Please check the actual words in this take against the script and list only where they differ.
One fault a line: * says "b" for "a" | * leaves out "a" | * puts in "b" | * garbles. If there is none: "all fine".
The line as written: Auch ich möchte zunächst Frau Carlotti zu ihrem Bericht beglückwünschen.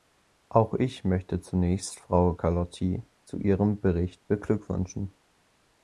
all fine